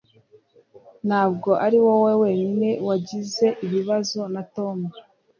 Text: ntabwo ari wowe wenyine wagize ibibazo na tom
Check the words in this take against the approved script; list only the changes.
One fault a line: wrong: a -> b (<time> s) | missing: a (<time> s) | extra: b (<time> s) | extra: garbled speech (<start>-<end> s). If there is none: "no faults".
no faults